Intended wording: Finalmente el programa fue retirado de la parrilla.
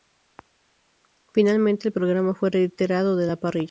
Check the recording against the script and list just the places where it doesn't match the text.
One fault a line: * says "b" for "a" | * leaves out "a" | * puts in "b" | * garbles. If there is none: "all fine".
all fine